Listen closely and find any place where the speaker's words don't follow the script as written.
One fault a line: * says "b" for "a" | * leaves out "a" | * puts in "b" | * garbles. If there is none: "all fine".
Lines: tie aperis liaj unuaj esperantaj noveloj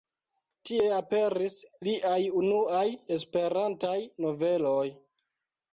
all fine